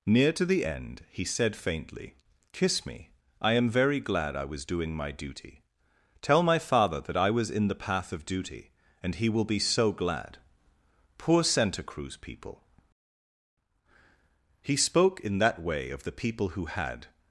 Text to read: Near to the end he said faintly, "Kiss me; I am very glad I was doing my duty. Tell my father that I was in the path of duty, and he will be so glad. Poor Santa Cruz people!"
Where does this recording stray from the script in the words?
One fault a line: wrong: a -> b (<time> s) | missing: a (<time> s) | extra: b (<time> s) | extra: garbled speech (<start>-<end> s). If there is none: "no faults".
extra: He spoke in that way of the people who had (14.6 s)